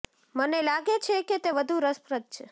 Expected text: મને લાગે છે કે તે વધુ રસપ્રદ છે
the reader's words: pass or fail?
pass